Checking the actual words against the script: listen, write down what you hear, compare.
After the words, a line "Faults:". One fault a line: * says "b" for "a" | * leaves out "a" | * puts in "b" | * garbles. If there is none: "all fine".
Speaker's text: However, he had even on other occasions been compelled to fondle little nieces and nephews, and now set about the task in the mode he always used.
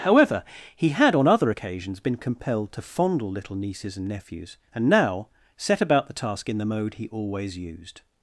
However, he had on other occasions been compelled to fondle little nieces and nephews, and now set about the task in the mode he always used.
Faults:
* leaves out "even"